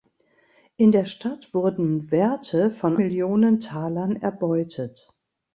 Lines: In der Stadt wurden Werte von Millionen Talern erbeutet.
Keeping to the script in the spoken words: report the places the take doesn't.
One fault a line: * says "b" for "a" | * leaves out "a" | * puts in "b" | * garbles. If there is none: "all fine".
all fine